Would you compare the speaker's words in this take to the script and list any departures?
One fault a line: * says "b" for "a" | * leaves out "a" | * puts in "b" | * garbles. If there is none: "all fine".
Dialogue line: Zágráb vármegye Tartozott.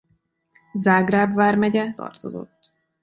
all fine